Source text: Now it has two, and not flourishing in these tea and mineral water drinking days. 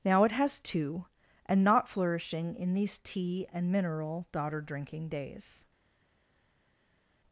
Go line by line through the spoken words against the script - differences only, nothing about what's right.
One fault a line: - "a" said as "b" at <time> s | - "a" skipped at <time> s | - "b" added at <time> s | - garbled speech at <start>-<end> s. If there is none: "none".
- "water" said as "daughter" at 4.3 s